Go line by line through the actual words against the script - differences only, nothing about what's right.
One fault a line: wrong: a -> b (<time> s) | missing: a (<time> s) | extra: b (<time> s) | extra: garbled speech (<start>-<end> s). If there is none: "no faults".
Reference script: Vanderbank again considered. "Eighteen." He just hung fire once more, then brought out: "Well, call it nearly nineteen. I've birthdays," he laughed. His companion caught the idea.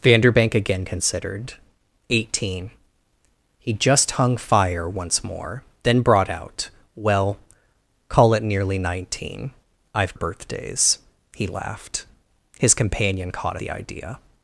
no faults